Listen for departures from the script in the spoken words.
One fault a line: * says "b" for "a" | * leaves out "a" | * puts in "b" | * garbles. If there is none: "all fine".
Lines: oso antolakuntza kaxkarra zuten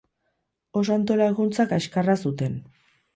all fine